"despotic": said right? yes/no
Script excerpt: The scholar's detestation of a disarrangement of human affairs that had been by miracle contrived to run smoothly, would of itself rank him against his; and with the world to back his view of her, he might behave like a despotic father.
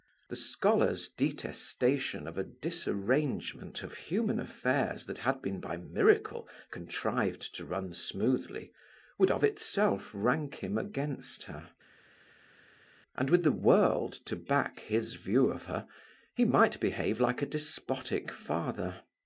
yes